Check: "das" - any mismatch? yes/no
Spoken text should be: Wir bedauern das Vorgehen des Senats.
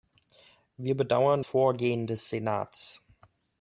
yes